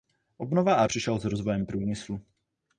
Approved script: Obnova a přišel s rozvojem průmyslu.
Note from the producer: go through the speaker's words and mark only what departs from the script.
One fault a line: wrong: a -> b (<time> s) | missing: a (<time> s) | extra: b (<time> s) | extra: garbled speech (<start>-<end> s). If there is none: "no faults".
no faults